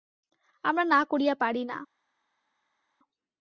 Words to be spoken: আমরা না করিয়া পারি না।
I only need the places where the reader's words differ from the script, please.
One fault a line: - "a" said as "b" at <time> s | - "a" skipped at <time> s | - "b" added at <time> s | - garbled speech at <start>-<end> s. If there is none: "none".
none